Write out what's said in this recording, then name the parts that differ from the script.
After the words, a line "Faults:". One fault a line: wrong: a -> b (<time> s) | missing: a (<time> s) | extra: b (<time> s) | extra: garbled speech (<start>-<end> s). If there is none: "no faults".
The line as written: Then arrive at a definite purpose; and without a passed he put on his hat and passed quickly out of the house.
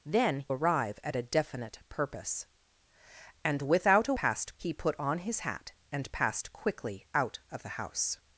Then arrive at a definite purpose; and without a passed he put on his hat and passed quickly out of the house.
Faults:
no faults